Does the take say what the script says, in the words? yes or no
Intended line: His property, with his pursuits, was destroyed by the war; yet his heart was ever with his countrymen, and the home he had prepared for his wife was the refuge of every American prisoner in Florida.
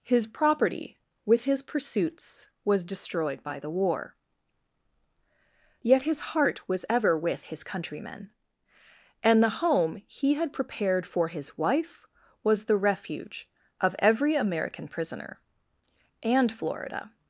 no